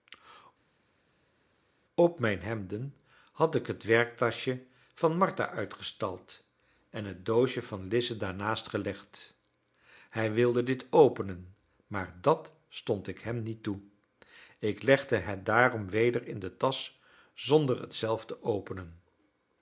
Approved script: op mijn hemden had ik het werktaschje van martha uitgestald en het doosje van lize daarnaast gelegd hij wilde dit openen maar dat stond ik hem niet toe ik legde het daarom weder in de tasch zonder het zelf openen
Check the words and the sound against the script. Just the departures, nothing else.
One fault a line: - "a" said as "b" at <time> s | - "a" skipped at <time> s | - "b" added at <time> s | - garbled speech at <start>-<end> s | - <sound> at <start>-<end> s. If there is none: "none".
- "te" added at 18.2 s